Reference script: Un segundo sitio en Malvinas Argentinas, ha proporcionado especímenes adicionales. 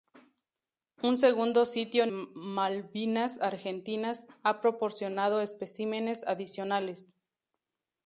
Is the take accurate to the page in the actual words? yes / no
yes